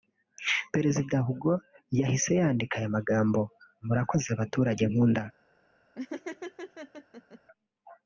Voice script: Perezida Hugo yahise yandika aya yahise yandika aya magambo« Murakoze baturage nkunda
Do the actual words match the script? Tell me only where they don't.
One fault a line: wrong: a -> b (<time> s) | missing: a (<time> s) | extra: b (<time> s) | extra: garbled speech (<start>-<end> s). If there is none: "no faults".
missing: yahise yandika aya (3.0 s)